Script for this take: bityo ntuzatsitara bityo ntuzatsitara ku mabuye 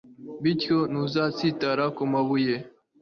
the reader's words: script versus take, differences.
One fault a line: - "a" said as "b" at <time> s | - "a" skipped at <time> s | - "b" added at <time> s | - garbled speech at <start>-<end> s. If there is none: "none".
- "bityo ntuzatsitara" skipped at 1.8 s